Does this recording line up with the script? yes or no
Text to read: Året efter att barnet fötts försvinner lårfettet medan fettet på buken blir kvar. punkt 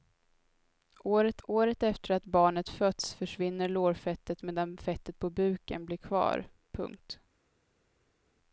no